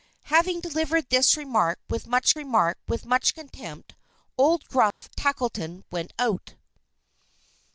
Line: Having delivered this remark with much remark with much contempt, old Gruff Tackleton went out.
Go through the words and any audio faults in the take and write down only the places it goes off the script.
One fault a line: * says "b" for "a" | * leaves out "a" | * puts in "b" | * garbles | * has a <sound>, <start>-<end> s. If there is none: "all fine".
* has a dropout, 4.9-5.0 s